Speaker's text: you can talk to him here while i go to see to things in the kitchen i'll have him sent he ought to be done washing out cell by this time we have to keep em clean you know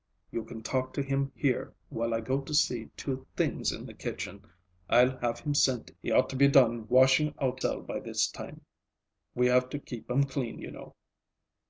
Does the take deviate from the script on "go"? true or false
false